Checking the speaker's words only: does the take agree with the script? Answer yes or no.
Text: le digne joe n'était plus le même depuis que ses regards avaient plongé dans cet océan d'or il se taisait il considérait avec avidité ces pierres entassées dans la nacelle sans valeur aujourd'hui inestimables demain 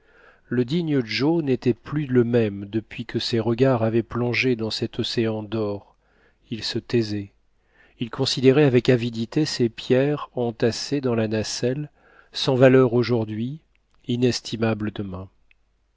yes